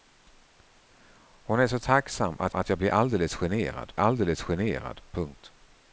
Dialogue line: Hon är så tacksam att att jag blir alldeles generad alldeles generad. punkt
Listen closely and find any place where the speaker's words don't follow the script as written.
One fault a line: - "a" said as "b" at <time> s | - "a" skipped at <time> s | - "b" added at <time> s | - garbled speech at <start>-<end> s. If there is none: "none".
none